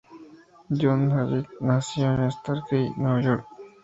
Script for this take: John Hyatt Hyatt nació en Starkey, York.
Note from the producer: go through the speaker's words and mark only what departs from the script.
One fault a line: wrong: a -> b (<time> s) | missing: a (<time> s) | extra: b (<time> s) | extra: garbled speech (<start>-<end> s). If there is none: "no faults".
missing: Hyatt (1.5 s)
extra: Nueva (3.0 s)